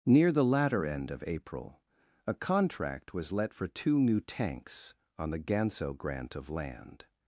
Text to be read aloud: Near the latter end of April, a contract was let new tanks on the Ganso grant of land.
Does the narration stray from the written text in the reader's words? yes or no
yes